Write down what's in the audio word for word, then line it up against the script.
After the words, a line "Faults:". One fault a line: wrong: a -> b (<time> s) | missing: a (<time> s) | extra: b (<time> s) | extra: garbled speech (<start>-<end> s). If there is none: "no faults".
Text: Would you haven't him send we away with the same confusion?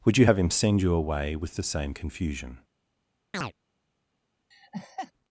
Would you have him send you away with the same confusion?
Faults:
wrong: haven't -> have (0.2 s)
wrong: we -> you (0.8 s)